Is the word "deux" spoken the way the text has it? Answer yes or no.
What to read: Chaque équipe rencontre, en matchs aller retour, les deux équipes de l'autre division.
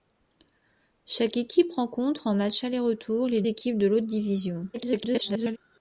no